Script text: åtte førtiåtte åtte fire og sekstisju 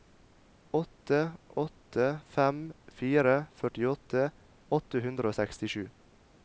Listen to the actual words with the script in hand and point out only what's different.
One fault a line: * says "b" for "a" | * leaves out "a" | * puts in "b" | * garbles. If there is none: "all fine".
* puts in "åtte fem fire"
* says "hundre" for "fire"